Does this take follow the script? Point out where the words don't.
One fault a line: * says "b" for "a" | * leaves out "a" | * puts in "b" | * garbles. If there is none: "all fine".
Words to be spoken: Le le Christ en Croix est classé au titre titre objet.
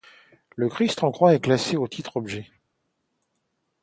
* leaves out "le"
* leaves out "titre"